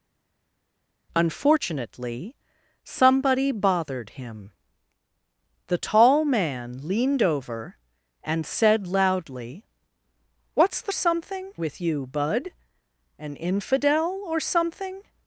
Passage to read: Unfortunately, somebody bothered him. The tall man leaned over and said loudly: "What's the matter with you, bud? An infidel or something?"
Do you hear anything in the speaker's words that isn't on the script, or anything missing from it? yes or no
yes